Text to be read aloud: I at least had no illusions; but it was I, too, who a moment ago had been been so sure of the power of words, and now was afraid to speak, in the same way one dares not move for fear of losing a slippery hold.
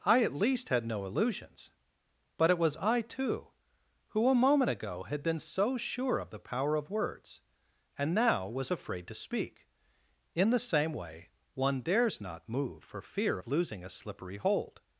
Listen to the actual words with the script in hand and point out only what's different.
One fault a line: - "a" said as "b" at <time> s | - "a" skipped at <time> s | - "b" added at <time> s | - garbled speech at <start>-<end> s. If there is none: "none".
- "been" skipped at 5.4 s